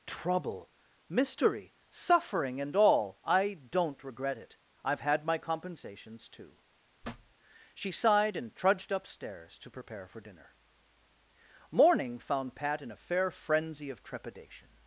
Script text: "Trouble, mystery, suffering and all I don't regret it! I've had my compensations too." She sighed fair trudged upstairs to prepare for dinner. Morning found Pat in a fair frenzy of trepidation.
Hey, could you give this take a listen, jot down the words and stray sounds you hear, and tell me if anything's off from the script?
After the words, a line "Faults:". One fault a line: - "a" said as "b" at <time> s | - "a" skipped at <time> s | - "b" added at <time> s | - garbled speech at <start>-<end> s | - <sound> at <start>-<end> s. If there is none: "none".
"Trouble, mystery, suffering and all I don't regret it! I've had my compensations too." She sighed and trudged upstairs to prepare for dinner. Morning found Pat in a fair frenzy of trepidation.
Faults:
- thud at 7.0-7.3 s
- "fair" said as "and" at 8.4 s